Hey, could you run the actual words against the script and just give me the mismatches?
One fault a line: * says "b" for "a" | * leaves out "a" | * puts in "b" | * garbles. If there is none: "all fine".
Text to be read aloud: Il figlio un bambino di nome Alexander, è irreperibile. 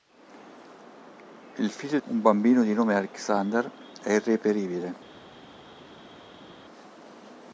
all fine